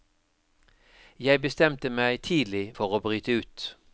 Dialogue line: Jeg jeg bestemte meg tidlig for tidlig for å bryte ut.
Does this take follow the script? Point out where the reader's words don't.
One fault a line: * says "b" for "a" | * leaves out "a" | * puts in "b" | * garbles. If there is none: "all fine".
* leaves out "jeg"
* leaves out "tidlig for"